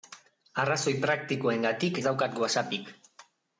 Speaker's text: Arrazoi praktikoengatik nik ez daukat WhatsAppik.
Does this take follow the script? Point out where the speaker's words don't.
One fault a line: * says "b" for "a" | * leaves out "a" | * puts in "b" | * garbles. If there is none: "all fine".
* leaves out "nik"